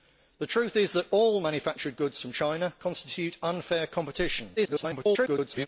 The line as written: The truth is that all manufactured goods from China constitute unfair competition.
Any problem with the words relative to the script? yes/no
yes